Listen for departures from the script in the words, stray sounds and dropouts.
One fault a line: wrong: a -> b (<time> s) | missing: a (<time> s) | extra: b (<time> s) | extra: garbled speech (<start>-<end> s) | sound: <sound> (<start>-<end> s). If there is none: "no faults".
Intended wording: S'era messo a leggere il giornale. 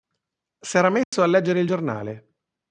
sound: dropout (1.0-1.1 s)